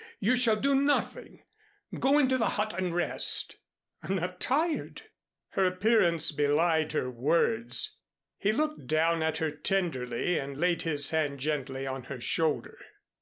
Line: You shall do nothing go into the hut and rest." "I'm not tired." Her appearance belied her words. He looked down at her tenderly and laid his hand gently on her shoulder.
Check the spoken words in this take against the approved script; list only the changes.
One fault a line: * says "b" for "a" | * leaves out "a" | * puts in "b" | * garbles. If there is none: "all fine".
all fine